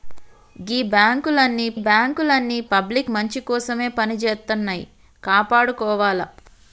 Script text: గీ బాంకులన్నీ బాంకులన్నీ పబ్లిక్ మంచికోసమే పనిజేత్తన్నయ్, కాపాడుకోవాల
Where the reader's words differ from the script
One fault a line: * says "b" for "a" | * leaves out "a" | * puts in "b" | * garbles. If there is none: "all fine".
all fine